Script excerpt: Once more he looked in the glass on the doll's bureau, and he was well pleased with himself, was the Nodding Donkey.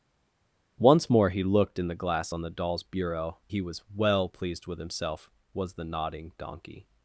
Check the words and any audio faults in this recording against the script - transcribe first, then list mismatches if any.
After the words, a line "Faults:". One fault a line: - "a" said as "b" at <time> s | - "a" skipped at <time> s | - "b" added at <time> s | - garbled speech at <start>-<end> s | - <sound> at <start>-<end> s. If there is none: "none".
Once more he looked in the glass on the doll's bureau, he was well pleased with himself, was the Nodding Donkey.
Faults:
- "and" skipped at 3.4 s